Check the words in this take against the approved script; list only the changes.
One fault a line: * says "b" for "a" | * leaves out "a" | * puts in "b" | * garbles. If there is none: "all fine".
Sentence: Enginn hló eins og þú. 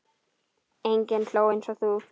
all fine